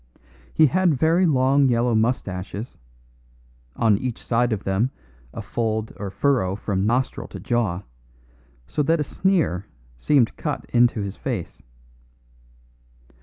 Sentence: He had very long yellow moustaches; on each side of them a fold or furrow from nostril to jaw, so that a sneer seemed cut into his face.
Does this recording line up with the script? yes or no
yes